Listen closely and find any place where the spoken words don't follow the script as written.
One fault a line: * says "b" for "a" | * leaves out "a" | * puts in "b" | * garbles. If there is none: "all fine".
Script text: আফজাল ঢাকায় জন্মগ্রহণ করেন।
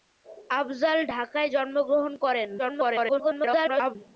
* garbles